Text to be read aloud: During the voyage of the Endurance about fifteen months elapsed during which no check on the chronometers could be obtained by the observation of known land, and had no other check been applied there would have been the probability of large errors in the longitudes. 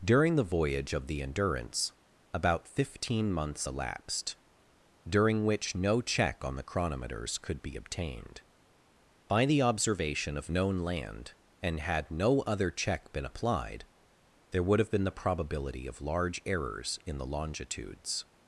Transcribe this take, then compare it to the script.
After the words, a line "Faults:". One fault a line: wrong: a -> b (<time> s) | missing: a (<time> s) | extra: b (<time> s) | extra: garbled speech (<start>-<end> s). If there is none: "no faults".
During the voyage of the Endurance about fifteen months elapsed during which no check on the chronometers could be obtained by the observation of known land, and had no other check been applied there would have been the probability of large errors in the longitudes.
Faults:
no faults